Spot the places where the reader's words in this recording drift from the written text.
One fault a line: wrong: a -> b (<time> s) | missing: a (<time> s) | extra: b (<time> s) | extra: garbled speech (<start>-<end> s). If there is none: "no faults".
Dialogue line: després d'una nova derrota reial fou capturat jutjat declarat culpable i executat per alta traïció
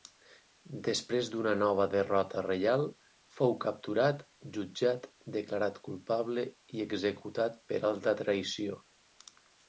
no faults